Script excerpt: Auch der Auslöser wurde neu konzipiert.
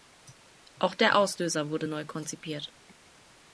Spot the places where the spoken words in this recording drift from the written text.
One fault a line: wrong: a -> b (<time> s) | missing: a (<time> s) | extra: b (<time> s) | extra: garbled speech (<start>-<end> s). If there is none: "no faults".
no faults